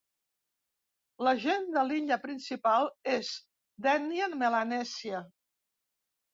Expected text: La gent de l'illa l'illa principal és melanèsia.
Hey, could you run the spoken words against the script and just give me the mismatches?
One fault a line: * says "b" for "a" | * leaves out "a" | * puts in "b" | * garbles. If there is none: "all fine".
* leaves out "l'illa"
* puts in "d'ètnia"